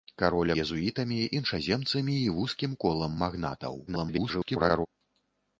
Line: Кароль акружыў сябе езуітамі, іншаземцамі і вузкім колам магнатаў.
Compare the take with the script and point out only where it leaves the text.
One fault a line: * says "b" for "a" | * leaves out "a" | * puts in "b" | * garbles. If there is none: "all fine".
* leaves out "акружыў сябе"
* garbles